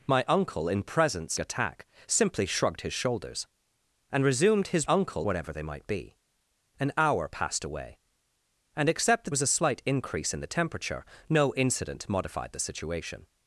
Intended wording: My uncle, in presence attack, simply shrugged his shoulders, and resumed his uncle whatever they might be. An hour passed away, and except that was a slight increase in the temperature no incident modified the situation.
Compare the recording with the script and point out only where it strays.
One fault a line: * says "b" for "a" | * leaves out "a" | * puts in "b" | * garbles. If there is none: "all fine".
all fine